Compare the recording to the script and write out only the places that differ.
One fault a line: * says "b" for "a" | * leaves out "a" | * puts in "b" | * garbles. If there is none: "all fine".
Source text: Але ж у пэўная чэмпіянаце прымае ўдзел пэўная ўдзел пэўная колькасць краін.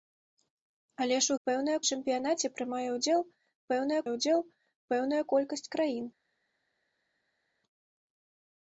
all fine